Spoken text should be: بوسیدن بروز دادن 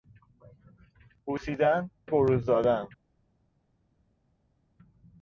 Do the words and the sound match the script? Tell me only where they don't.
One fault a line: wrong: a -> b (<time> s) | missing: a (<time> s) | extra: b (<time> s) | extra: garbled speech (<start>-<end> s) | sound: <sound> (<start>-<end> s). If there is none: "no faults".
no faults